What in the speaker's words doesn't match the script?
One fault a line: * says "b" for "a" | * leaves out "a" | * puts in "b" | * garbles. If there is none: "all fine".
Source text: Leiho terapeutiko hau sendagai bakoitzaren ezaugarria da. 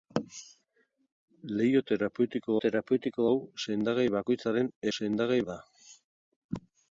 * puts in "terapeutiko"
* says "sendagai" for "ezaugarria"